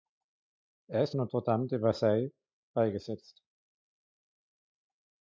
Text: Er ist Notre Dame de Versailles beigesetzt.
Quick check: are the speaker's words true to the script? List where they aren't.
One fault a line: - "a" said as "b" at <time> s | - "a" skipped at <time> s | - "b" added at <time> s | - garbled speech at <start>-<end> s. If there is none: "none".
none